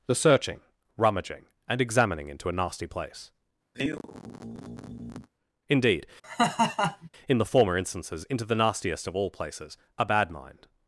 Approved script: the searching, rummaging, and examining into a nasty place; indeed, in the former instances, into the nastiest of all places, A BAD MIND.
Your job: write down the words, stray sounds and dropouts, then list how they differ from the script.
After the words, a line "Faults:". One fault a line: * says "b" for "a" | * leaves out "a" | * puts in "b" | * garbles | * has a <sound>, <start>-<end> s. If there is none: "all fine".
the searching, rummaging, and examining into a nasty place; indeed, in the former instances, into the nastiest of all places, A BAD MIND.
Faults:
* has a sigh, 3.7-5.3 s
* has a laugh, 6.2-7.1 s